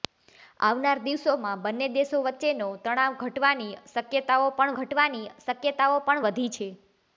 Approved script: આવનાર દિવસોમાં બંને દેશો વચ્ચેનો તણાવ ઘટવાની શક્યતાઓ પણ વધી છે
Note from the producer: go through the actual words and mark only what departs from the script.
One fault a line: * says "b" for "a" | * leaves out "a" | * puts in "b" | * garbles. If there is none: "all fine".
* puts in "ઘટવાની શક્યતાઓ પણ"